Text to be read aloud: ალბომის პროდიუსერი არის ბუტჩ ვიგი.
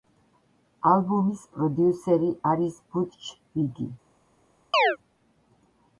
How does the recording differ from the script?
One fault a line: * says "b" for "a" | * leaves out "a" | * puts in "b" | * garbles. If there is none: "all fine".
all fine